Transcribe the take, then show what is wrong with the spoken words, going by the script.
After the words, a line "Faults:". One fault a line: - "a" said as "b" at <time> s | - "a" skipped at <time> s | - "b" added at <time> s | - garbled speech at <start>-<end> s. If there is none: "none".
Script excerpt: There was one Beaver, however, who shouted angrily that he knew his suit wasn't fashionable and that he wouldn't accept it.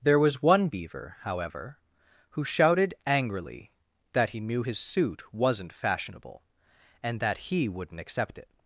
There was one Beaver, however, who shouted angrily that he knew his suit wasn't fashionable and that he wouldn't accept it.
Faults:
none